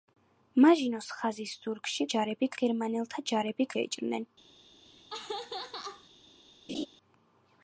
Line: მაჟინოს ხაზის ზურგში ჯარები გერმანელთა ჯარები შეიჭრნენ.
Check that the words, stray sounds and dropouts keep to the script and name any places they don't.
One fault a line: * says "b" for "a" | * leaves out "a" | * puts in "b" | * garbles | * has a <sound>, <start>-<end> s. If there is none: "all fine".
* has a laugh, 4.8-6.1 s
* has a laugh, 6.7-6.9 s